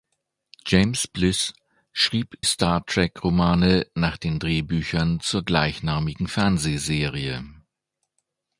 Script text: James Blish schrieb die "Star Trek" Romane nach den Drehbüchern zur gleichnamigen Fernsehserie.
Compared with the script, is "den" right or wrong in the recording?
right